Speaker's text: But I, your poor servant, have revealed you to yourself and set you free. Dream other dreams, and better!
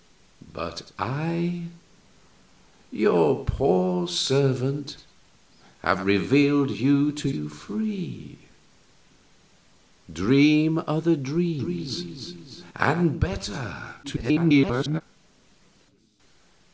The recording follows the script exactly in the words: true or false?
false